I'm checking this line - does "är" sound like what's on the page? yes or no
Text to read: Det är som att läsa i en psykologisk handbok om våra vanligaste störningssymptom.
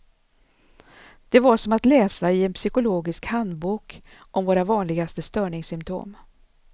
no